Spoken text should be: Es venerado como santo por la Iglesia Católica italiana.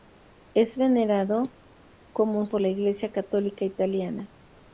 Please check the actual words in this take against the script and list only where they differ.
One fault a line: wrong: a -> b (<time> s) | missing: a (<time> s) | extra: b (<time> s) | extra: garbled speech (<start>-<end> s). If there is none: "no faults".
missing: santo (2.5 s)